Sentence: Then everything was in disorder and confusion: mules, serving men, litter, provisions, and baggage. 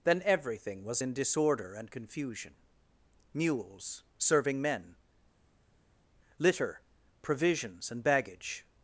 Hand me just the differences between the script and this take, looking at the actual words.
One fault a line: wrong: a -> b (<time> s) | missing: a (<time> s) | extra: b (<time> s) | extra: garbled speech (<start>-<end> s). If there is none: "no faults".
no faults